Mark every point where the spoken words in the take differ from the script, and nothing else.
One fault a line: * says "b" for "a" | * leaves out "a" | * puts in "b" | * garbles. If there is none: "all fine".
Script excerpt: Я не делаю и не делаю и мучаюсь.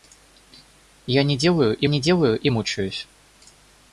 all fine